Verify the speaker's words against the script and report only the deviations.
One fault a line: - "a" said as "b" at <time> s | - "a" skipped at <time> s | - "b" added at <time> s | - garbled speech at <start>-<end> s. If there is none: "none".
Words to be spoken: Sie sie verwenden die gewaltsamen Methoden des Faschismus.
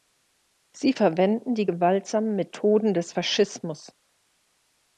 - "sie" skipped at 0.9 s